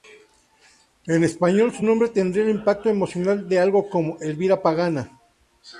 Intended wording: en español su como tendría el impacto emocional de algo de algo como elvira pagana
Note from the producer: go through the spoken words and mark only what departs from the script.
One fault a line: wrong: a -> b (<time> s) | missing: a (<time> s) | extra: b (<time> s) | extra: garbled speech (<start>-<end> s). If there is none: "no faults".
wrong: como -> nombre (1.8 s)
missing: de algo (3.9 s)